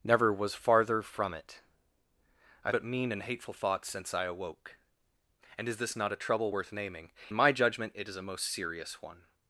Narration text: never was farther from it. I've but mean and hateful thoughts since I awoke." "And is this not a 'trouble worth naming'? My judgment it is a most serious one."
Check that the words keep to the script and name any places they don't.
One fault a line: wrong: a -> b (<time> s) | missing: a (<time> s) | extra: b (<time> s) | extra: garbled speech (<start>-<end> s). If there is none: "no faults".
no faults